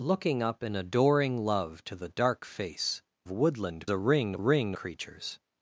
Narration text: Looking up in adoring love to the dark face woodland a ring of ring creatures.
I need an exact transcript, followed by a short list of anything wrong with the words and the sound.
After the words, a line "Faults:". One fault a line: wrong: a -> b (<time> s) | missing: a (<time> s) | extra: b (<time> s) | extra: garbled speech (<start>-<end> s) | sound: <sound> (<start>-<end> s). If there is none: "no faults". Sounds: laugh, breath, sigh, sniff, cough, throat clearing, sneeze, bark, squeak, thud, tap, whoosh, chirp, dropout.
Looking up in adoring love to the dark face woodland a ring of ring creatures.
Faults:
no faults